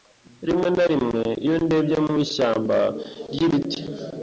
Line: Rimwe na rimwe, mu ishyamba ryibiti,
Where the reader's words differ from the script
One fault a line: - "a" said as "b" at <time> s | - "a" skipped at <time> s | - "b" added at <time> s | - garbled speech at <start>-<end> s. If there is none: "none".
- "iyo ndebye" added at 1.4 s